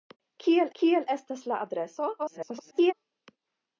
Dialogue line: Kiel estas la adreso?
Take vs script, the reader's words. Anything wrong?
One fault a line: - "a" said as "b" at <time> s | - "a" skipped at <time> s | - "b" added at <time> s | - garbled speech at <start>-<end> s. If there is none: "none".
- "kiel" added at 0.8 s
- garbled speech at 2.2-2.9 s